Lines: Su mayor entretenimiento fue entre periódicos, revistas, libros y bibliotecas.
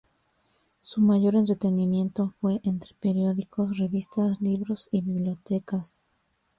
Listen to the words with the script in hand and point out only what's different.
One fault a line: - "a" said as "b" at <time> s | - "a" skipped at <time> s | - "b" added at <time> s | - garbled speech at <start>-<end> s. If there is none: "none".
none